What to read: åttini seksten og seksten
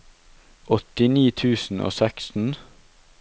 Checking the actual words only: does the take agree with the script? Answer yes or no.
no